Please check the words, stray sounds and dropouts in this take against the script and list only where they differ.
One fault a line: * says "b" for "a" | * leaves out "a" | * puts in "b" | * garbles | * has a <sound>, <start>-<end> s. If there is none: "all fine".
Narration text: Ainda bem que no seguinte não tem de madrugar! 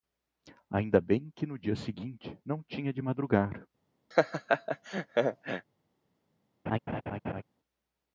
* puts in "dia"
* says "tinha" for "tem"
* has a laugh, 4.1-5.7 s
* has a laugh, 6.7-7.4 s